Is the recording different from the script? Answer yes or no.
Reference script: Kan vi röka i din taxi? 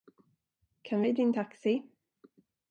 yes